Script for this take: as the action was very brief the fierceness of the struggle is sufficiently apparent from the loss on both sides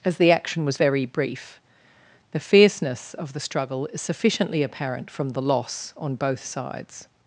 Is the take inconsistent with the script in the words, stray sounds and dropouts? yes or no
no